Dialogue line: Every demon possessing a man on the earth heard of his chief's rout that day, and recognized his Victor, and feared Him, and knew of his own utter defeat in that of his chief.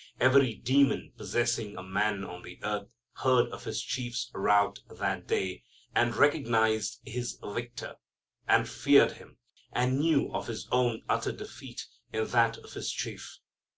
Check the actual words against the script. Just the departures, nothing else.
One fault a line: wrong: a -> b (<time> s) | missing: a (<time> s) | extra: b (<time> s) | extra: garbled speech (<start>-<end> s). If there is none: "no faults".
no faults